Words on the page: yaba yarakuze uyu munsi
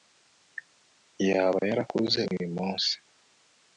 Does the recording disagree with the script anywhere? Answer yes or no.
no